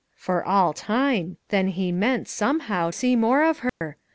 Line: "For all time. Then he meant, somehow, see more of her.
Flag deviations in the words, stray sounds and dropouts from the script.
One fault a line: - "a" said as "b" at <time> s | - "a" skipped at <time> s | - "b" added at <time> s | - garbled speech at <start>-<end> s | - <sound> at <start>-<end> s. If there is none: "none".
- dropout at 3.7-3.8 s